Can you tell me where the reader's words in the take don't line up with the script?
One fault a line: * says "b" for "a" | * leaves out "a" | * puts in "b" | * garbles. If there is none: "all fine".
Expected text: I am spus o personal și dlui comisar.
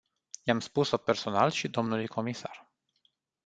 all fine